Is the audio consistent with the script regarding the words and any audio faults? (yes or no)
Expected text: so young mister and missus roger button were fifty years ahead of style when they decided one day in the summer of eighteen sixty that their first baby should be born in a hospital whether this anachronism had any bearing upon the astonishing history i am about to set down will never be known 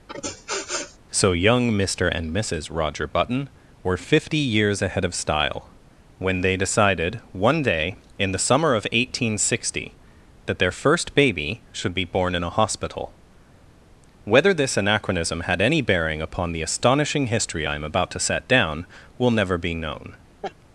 no